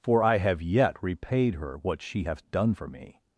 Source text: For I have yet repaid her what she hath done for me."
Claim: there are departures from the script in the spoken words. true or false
false